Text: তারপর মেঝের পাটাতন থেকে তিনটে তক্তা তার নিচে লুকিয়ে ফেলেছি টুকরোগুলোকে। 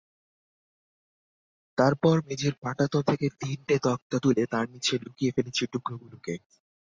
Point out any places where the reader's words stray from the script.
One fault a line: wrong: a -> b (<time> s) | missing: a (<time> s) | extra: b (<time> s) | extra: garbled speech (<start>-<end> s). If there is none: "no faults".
extra: তুলে (4.2 s)